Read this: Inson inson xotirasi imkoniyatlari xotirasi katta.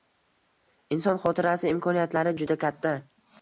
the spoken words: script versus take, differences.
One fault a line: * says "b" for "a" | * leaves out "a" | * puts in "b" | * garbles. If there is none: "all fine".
* leaves out "inson"
* says "juda" for "xotirasi"